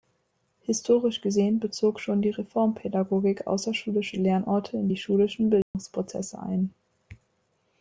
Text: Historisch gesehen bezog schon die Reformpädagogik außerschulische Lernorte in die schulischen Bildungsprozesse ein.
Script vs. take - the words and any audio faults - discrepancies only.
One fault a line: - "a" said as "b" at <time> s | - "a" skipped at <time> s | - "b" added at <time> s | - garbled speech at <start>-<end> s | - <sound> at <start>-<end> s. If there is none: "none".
- dropout at 5.6-5.7 s